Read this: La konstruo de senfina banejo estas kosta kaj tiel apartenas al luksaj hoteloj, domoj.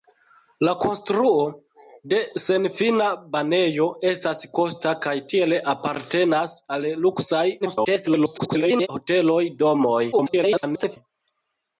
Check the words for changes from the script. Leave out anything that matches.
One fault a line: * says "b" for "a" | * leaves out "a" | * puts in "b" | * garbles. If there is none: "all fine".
* garbles
* garbles